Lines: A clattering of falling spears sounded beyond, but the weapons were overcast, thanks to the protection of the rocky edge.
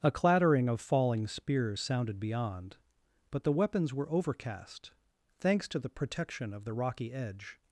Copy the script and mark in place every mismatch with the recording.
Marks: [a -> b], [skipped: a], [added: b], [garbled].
A clattering of falling spears sounded beyond, but the weapons were overcast, thanks to the protection of the rocky edge.